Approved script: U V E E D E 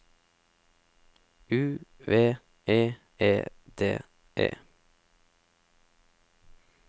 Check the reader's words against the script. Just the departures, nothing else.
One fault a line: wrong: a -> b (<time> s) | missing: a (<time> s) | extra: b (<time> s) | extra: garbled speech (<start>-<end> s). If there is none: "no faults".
no faults